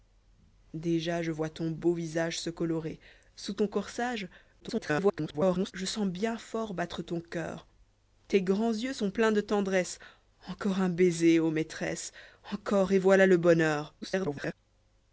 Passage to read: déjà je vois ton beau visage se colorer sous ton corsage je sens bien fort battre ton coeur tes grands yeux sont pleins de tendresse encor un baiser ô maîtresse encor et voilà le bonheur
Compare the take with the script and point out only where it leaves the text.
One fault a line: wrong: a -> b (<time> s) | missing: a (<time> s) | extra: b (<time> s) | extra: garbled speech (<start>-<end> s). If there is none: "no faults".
extra: garbled speech (4.6-5.7 s)
extra: garbled speech (14.0-14.5 s)